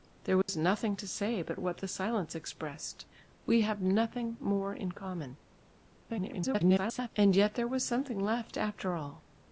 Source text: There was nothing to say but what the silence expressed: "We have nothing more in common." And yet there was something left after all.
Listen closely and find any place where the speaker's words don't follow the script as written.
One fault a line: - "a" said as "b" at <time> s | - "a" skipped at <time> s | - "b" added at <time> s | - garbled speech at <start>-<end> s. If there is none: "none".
- garbled speech at 6.1-7.1 s